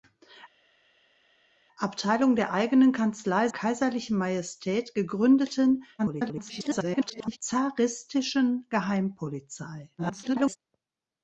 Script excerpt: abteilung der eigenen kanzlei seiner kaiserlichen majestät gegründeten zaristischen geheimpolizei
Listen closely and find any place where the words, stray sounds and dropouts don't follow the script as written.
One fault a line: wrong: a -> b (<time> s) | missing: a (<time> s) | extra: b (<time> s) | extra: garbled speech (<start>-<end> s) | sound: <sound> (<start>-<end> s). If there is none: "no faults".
missing: seiner (3.5 s)
extra: garbled speech (6.0-7.4 s)
extra: garbled speech (10.0-10.6 s)